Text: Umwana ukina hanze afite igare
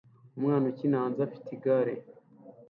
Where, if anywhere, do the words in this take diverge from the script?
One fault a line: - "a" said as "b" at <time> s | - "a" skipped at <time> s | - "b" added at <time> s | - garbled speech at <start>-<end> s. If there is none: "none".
none